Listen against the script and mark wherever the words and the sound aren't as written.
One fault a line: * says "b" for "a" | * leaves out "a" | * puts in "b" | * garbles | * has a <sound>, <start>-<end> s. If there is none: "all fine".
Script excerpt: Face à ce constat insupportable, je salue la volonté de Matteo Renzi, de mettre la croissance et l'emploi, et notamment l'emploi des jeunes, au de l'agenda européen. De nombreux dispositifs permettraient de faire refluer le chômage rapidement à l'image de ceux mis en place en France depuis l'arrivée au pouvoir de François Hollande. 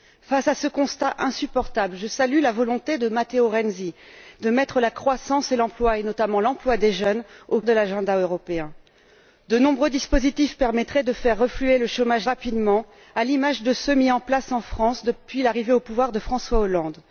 all fine